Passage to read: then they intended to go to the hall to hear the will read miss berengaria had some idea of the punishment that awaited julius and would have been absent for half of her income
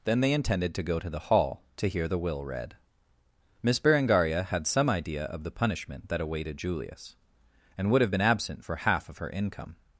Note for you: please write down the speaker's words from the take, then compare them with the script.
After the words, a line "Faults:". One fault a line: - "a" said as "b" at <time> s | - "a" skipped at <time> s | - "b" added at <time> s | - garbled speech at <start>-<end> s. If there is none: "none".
then they intended to go to the hall to hear the will read miss berengaria had some idea of the punishment that awaited julius and would have been absent for half of her income
Faults:
none